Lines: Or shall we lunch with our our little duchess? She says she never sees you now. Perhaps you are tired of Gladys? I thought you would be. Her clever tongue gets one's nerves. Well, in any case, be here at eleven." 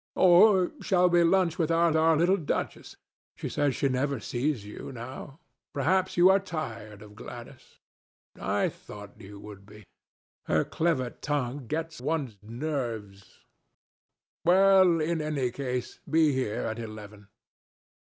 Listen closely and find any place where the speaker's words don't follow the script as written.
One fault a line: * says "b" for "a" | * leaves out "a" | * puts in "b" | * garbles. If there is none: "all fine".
all fine